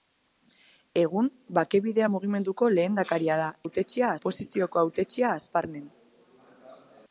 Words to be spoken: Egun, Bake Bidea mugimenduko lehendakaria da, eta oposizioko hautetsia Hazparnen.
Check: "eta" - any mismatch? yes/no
yes